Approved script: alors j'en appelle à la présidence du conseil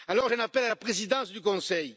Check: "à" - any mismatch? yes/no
no